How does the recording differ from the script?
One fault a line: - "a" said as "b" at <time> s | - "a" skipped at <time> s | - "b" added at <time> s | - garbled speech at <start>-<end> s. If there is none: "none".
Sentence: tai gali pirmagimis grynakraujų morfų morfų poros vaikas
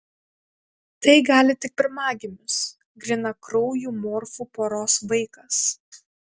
- "tik" added at 1.6 s
- "morfų" skipped at 4.5 s